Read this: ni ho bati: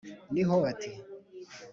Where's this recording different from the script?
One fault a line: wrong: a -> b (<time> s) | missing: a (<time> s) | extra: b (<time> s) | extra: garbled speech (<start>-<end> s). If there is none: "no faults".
no faults